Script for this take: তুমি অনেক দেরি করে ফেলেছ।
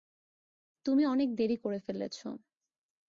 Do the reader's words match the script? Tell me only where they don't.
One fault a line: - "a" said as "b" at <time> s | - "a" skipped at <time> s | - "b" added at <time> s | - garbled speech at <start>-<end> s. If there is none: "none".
none